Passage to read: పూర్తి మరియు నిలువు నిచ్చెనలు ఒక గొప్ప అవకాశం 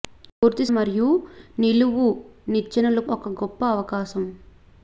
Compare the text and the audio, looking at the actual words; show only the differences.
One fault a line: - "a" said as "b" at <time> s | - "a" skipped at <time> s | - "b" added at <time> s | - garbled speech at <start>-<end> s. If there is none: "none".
none